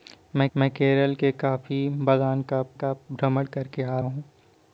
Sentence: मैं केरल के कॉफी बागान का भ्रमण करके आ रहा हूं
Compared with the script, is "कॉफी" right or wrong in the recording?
right